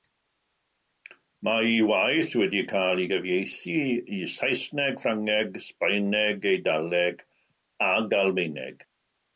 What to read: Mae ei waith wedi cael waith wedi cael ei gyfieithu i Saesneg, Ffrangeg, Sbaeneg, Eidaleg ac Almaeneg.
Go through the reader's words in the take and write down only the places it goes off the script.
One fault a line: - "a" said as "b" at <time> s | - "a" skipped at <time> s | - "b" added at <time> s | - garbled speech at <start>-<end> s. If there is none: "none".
- "waith wedi cael" skipped at 3.0 s